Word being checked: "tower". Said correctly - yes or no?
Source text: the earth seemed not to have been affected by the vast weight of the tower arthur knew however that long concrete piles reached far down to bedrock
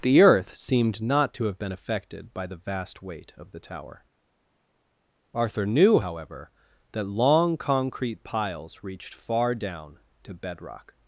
yes